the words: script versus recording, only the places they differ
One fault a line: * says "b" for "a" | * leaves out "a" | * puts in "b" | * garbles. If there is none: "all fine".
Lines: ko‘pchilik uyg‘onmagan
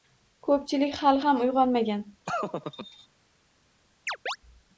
* puts in "hali ham"